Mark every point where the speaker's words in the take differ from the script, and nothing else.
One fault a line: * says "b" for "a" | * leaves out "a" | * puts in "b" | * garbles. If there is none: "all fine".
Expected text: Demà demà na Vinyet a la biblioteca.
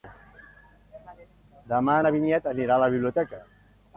* leaves out "demà"
* puts in "anirà"